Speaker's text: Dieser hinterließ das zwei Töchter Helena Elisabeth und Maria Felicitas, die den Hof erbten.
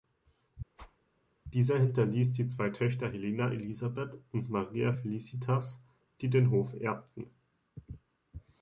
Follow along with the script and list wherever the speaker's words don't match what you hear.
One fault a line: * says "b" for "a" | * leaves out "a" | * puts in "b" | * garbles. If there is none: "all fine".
* says "die" for "das"